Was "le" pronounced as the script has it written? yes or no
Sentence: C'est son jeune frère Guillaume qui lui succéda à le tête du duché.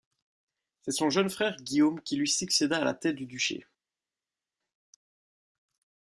no